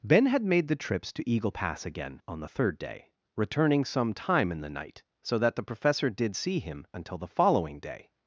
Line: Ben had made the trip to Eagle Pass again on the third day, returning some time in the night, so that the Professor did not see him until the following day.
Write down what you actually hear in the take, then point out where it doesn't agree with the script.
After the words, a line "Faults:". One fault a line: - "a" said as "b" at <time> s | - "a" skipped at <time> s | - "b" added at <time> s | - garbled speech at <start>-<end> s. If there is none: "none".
Ben had made the trips to Eagle Pass again on the third day, returning some time in the night, so that the Professor did see him until the following day.
Faults:
- "trip" said as "trips" at 0.8 s
- "not" skipped at 6.4 s